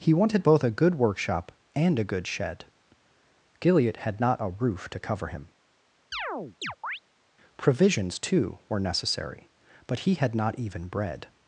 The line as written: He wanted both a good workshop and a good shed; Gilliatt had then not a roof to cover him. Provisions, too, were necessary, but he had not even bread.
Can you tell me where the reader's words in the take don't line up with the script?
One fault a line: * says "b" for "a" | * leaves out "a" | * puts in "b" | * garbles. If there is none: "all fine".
* leaves out "then"